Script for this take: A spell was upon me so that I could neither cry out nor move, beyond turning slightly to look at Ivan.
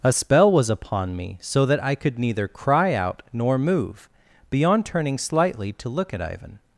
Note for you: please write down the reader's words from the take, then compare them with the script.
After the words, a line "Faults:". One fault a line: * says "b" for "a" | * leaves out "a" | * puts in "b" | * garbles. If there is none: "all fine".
A spell was upon me so that I could neither cry out nor move, beyond turning slightly to look at Ivan.
Faults:
all fine